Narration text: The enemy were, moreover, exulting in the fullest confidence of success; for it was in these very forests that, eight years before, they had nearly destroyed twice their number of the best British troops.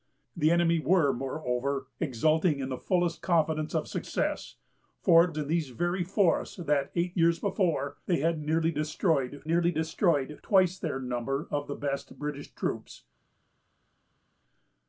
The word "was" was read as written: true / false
false